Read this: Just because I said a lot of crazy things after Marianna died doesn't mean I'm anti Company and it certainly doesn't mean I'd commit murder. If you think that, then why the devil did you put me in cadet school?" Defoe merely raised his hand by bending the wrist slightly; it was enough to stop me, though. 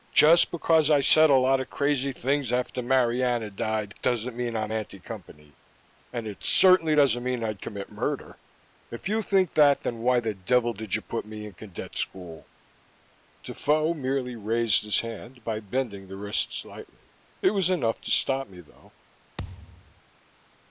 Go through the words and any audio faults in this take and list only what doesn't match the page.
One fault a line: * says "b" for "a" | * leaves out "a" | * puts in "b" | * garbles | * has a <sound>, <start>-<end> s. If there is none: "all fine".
* has a thud, 19.4-20.0 s